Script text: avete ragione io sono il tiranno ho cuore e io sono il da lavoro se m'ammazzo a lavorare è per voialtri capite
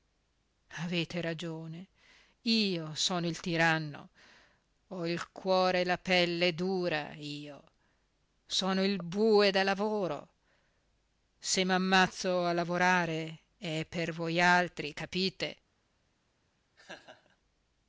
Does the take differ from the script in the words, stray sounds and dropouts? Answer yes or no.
yes